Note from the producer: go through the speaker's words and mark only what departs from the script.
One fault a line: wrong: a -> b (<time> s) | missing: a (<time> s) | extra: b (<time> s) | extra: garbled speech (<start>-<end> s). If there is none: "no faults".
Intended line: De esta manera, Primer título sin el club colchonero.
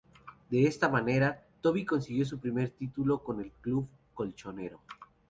extra: Toby consiguió su (1.6 s)
wrong: sin -> con (3.2 s)